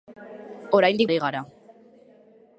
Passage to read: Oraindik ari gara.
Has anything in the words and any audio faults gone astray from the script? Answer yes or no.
no